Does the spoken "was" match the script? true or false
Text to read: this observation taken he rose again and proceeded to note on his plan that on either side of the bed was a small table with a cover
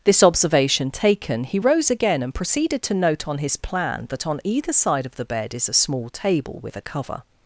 false